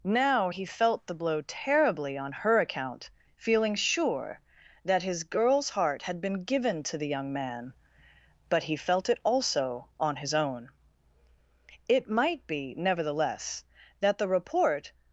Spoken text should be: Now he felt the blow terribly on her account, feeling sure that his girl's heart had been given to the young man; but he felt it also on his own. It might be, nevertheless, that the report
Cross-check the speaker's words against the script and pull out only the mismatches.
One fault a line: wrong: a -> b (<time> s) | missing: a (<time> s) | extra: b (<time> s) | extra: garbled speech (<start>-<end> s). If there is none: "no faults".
no faults